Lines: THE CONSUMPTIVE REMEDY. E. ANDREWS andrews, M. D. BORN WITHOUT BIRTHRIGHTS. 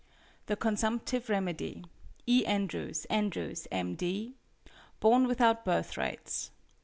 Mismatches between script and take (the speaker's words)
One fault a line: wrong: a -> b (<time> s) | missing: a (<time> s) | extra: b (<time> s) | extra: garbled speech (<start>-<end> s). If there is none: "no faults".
no faults